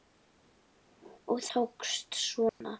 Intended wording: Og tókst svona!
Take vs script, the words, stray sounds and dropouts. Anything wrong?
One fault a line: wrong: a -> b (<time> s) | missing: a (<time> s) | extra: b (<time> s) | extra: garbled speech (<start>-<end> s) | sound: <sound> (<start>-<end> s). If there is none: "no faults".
sound: dropout (2.5-2.6 s)